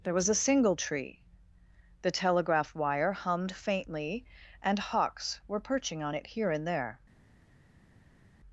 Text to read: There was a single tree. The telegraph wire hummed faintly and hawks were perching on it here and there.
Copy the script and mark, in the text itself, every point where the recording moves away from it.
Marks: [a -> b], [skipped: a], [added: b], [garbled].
There was a single tree. The telegraph wire hummed faintly and hawks were perching on it here and there.